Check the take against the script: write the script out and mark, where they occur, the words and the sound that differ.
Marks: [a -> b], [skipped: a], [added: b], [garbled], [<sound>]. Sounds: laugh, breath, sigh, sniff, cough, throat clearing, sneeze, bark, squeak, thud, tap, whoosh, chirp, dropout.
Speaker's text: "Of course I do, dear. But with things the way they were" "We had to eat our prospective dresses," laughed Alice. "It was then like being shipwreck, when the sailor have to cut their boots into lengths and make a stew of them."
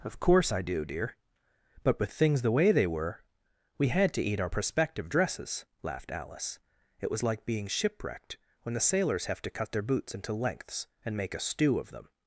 "Of course I do, dear. But with things the way they were" "We had to eat our prospective dresses," laughed Alice. "It was [skipped: then] like being [shipwreck, -> shipwrecked] when the [sailor -> sailors] have to cut their boots into lengths and make a stew of them."